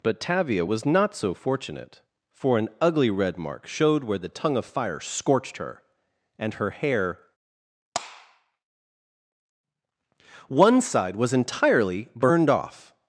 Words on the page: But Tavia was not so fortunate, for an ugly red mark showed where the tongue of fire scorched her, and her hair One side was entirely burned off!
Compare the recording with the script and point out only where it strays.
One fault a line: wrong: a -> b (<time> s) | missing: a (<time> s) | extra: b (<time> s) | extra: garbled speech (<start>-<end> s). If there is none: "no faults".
no faults